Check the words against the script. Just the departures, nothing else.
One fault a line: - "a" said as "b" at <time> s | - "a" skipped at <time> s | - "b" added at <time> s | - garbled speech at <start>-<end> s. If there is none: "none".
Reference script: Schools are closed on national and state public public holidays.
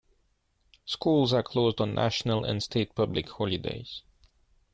- "public" skipped at 3.3 s